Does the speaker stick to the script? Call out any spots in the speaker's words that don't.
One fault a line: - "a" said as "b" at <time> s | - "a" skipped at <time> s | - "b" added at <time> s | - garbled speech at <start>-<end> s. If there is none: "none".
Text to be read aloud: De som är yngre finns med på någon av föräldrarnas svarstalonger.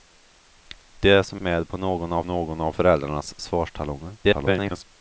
- "är yngre finns med på" said as "med på någon av" at 1.4 s
- garbled speech at 4.2-4.8 s